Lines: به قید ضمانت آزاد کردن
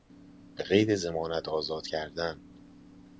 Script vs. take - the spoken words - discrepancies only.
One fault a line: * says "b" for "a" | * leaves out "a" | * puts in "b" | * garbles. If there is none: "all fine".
all fine